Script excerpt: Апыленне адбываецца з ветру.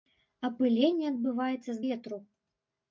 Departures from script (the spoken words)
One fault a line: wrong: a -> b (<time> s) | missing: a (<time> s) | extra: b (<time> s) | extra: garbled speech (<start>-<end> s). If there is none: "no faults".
no faults